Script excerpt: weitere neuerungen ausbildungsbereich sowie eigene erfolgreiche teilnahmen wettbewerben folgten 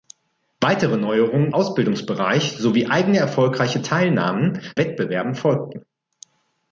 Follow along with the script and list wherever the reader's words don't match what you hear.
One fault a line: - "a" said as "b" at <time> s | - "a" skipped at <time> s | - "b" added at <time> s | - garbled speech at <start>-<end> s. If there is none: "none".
none